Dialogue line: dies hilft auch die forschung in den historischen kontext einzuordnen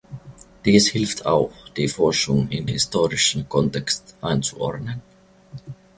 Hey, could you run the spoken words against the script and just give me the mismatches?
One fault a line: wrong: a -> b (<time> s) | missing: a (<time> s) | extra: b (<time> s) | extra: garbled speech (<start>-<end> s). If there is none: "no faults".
missing: den (2.7 s)